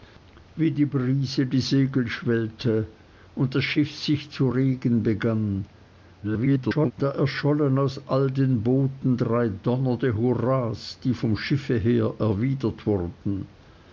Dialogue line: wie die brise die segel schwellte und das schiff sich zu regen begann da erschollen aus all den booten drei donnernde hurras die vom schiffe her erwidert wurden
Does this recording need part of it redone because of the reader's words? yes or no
yes